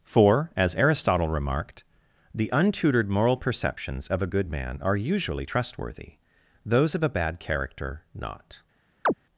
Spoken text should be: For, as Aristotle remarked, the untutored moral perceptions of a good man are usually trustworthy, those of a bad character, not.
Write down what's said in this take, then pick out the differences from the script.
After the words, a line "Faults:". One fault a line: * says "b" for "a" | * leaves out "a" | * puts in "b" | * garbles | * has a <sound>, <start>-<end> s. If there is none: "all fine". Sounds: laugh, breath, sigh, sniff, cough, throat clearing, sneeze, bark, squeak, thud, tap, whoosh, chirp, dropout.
For, as Aristotle remarked, the untutored moral perceptions of a good man are usually trustworthy, those of a bad character, not.
Faults:
* has a chirp, 9.1-9.1 s